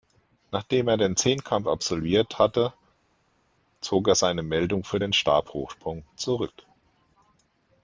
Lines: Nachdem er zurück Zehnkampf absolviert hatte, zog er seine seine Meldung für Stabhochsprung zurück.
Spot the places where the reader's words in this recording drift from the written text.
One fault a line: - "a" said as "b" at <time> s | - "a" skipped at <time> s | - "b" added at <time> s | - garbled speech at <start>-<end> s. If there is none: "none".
- "zurück" said as "den" at 1.0 s
- "seine" skipped at 4.4 s
- "den" added at 5.0 s